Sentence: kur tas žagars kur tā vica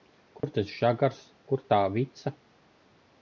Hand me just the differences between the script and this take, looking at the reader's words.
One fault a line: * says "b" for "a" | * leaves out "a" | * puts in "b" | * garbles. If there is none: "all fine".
all fine